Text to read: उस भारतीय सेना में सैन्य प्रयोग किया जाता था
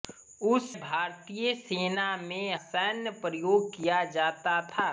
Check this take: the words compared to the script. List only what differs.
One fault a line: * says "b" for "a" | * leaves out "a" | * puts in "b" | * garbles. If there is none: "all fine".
all fine